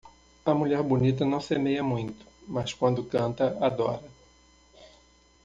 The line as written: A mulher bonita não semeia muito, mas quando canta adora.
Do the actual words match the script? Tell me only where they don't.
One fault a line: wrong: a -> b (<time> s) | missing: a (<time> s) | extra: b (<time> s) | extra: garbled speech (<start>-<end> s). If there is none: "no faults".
no faults